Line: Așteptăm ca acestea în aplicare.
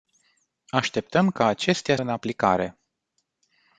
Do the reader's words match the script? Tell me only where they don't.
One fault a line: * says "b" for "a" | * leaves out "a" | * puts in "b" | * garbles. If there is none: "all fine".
all fine